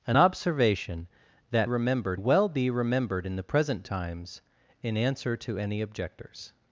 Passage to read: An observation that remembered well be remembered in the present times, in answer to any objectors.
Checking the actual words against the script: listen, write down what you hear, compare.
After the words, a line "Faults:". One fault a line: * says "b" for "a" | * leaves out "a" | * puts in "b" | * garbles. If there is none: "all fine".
An observation that remembered well be remembered in the present times, in answer to any objectors.
Faults:
all fine